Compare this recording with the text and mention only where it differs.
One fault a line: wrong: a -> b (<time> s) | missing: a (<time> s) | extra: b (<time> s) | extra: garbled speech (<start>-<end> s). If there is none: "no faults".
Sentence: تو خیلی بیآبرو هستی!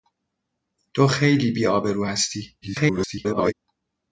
extra: garbled speech (2.6-3.5 s)